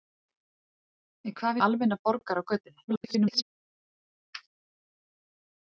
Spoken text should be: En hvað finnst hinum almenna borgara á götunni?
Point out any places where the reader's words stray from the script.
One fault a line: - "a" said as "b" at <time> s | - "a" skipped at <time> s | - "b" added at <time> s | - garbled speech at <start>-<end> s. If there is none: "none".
- "finnst hinum" skipped at 1.6 s
- garbled speech at 2.9-3.4 s